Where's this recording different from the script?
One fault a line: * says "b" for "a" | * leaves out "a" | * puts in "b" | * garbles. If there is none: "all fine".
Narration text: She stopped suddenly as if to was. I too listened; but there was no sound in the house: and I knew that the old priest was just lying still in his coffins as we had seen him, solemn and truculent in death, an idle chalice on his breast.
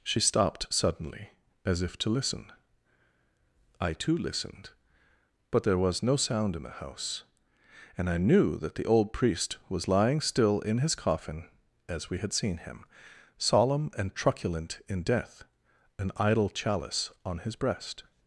* says "listen" for "was"
* leaves out "just"
* says "coffin" for "coffins"